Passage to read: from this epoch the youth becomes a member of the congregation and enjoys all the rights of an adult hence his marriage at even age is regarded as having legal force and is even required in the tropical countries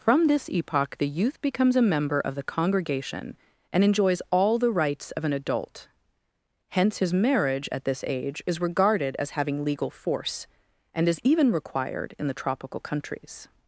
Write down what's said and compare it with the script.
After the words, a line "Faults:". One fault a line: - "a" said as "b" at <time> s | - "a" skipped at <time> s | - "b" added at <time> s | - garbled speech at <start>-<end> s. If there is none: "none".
from this epoch the youth becomes a member of the congregation and enjoys all the rights of an adult hence his marriage at this age is regarded as having legal force and is even required in the tropical countries
Faults:
- "even" said as "this" at 7.8 s